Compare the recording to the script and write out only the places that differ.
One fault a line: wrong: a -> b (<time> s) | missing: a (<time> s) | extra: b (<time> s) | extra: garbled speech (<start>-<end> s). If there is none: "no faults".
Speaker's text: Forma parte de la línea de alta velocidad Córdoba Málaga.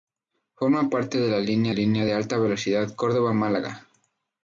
extra: línea (1.7 s)